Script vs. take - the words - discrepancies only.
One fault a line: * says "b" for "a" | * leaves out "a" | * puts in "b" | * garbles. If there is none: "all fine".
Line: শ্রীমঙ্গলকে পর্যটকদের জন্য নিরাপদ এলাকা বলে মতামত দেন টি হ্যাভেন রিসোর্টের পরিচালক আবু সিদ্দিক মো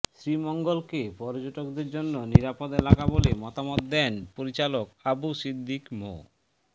* leaves out "টি হ্যাভেন রিসোর্টের"